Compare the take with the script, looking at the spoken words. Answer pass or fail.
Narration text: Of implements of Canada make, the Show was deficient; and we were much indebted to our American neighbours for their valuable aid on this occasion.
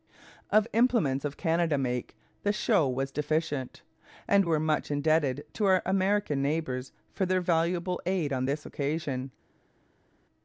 fail